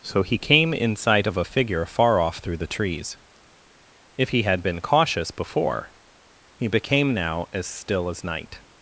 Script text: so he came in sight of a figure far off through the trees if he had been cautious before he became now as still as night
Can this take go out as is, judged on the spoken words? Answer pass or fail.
pass